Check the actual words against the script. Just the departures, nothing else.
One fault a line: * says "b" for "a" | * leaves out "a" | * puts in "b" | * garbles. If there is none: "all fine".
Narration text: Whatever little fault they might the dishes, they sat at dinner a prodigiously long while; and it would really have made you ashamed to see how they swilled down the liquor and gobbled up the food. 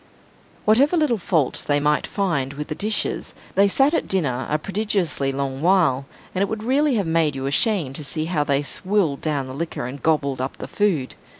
* puts in "find with"